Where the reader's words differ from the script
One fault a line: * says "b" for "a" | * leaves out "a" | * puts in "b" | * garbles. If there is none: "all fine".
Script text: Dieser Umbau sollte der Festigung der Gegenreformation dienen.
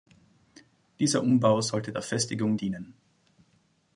* leaves out "der Gegenreformation"